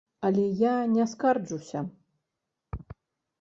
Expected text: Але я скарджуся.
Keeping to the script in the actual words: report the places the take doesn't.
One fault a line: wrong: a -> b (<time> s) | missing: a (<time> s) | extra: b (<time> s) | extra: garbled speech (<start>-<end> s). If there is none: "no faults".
extra: не (0.8 s)